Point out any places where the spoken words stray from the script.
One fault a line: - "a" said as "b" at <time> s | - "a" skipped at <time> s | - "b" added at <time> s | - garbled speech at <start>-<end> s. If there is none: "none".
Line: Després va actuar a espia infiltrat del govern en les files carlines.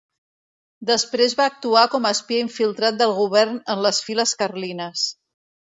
- "com" added at 1.9 s